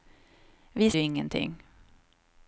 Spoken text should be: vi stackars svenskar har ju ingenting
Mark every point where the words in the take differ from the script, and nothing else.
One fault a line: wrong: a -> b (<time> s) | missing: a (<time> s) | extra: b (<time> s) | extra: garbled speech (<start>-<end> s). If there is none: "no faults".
missing: stackars svenskar har (0.9 s)